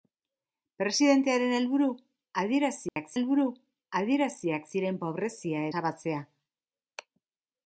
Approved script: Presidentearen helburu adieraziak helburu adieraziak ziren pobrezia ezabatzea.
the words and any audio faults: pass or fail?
fail